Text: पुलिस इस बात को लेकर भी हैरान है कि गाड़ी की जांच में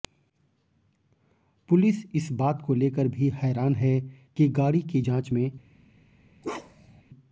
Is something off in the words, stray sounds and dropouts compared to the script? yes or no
yes